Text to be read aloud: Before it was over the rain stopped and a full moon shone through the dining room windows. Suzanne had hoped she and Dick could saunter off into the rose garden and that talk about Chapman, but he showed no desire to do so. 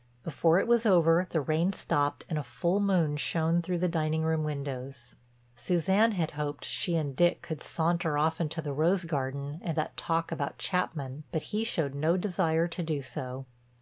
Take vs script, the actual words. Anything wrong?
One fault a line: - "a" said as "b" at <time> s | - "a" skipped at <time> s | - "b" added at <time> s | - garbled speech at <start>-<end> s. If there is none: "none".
none